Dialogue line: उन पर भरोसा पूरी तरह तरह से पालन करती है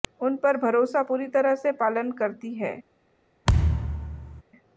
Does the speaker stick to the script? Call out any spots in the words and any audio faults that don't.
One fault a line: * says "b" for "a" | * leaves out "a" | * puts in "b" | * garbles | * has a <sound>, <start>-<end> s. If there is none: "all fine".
* leaves out "तरह"
* has a thud, 3.5-4.4 s